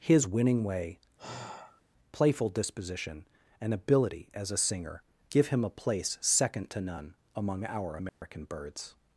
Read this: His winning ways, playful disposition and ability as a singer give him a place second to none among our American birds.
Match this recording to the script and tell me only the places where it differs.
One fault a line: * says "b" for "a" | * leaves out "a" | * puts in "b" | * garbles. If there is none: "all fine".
* says "way" for "ways"